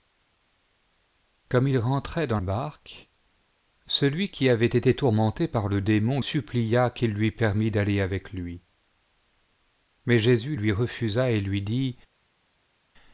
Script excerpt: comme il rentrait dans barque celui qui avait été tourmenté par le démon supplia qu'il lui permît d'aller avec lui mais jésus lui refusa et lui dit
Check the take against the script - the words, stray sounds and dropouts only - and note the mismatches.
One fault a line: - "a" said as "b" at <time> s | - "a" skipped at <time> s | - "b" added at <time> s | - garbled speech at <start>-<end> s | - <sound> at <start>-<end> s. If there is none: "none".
none